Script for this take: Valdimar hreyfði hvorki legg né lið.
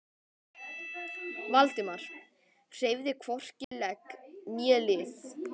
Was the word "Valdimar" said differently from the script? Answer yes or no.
no